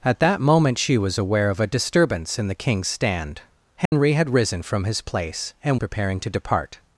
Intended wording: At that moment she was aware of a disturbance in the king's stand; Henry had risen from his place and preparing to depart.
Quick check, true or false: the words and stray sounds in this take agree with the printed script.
false